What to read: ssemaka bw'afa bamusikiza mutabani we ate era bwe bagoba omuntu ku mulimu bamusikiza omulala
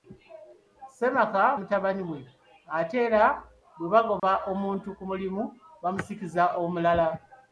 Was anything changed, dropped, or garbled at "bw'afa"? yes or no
yes